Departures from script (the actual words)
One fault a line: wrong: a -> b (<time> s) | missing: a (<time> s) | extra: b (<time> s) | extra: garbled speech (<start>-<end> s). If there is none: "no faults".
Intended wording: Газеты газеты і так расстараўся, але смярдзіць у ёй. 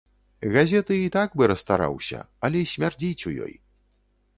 missing: газеты (1.0 s)
extra: бы (1.4 s)